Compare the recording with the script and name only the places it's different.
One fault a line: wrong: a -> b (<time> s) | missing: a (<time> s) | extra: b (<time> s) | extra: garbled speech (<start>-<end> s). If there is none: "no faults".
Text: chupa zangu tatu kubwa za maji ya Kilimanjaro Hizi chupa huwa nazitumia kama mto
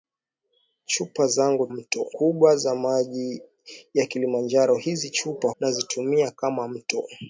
wrong: tatu -> mto (1.7 s)
missing: huwa (5.5 s)